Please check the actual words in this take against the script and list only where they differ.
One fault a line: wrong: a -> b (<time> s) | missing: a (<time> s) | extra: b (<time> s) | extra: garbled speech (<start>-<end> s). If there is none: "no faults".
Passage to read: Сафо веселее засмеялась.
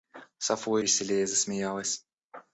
no faults